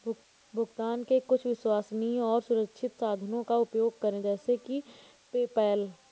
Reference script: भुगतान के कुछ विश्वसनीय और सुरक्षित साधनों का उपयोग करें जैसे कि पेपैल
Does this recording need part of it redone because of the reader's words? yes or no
no